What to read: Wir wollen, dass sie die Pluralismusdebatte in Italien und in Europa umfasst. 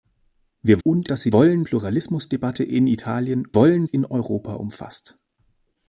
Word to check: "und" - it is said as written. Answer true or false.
false